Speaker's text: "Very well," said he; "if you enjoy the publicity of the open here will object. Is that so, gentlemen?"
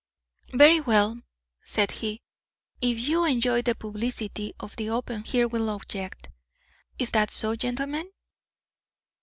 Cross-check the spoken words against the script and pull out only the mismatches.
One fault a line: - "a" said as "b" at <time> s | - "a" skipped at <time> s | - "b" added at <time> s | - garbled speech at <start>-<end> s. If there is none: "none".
none